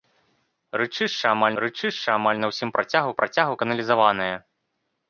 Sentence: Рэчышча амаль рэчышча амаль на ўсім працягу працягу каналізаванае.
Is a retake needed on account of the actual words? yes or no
no